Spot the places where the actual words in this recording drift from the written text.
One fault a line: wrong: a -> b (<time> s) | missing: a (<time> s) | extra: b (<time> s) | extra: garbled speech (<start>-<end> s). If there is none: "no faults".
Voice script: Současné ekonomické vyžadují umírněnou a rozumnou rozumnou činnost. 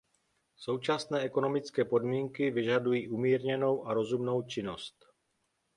extra: podmínky (1.8 s)
missing: rozumnou (4.4 s)